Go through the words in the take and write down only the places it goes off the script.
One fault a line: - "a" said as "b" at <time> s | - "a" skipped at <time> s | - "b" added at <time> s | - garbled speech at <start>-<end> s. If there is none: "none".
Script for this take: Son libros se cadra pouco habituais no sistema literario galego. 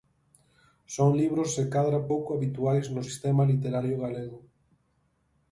none